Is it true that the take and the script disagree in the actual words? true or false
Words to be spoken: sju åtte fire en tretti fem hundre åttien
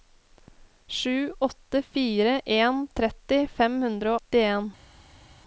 false